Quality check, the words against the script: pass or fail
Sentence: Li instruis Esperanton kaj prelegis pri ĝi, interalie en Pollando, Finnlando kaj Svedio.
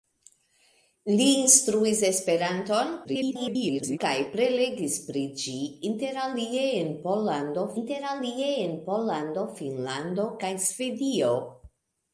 fail